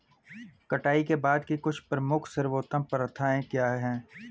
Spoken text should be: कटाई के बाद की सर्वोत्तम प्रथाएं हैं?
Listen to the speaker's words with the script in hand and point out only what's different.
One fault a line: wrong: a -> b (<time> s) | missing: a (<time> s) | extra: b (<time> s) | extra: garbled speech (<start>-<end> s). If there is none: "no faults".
extra: कुछ प्रमुख (1.6 s)
extra: क्या (3.4 s)